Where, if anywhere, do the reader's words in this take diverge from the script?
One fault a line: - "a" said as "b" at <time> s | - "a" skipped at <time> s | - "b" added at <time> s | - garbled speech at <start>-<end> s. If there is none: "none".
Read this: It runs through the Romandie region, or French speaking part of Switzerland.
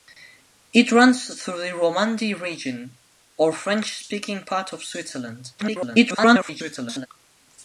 - garbled speech at 5.6-7.1 s